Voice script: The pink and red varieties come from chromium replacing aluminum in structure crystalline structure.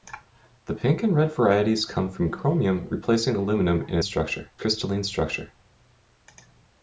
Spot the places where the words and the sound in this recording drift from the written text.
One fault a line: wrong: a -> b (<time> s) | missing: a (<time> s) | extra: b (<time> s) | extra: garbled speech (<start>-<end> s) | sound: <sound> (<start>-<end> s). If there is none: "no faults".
no faults